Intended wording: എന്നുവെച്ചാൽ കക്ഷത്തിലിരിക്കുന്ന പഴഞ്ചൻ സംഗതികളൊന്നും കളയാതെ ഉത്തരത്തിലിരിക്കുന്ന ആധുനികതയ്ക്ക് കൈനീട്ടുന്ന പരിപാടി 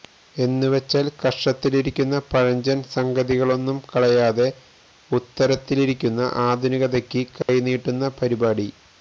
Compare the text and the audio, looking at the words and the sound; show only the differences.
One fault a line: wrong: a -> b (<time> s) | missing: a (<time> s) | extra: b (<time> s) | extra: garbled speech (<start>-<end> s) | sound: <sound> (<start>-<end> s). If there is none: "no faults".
sound: dropout (7.4-7.5 s)